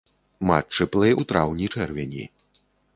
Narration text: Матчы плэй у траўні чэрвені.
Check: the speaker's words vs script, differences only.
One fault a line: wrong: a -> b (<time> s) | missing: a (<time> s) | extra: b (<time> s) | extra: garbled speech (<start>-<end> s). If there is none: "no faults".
no faults